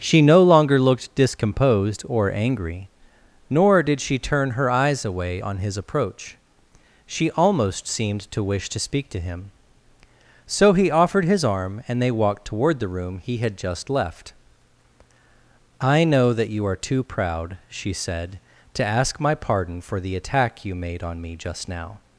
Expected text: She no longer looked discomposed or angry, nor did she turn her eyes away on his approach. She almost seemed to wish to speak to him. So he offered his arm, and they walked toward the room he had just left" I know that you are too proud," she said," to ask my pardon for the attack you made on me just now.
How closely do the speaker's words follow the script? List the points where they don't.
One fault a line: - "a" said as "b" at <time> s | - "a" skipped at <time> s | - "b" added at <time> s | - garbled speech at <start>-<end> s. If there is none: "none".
none